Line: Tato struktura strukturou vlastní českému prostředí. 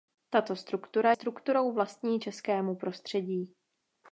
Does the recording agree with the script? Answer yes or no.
yes